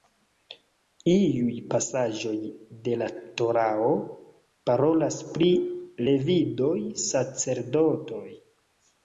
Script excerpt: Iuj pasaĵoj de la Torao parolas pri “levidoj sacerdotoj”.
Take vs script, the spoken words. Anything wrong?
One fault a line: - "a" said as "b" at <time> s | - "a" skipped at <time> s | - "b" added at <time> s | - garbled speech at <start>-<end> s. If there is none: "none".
none